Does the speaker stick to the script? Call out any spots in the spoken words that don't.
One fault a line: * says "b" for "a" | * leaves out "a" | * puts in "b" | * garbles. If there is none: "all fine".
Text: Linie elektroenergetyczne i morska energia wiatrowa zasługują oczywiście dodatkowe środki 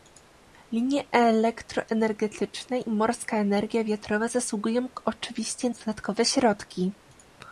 all fine